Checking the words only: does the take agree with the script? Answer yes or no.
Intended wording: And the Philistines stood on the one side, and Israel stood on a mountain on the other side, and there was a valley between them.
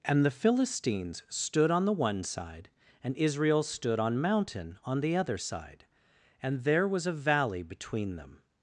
no